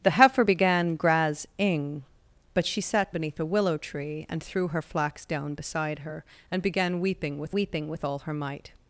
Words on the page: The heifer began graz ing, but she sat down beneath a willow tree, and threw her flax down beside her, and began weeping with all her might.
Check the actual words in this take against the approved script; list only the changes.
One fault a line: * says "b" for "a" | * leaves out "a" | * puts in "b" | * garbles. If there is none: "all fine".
* leaves out "down"
* puts in "weeping with"